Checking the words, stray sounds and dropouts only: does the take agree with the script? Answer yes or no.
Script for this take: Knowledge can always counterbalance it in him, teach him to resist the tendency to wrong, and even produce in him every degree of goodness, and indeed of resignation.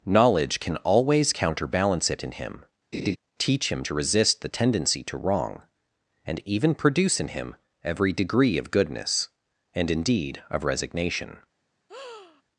no